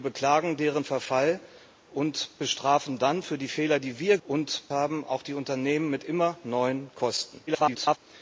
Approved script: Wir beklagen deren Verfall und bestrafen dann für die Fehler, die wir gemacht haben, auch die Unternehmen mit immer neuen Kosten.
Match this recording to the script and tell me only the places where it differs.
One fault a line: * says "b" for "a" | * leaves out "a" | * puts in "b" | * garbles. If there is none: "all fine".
* says "und" for "gemacht"
* garbles